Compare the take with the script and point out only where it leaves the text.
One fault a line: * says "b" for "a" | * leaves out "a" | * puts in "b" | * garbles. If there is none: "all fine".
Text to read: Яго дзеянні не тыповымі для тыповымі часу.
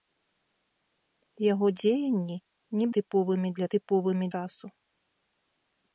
all fine